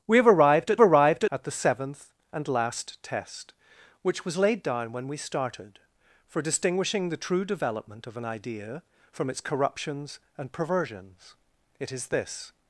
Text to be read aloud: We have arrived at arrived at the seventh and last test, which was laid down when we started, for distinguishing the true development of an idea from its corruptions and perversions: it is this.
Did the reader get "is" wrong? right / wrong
right